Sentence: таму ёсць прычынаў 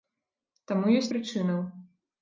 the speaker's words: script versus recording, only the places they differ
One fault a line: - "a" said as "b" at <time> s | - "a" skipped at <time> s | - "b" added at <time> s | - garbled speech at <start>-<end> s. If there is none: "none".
none